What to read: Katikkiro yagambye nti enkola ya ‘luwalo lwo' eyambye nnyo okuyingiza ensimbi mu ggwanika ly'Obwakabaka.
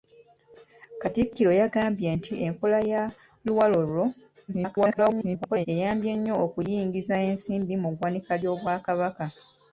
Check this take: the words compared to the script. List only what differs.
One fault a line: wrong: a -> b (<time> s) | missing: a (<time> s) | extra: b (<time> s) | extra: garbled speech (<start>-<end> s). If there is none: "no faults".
extra: garbled speech (4.5-5.7 s)